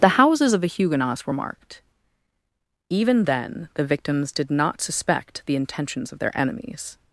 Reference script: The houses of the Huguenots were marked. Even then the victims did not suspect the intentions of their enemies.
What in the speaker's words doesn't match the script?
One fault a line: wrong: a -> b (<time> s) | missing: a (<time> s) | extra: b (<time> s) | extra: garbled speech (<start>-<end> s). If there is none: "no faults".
no faults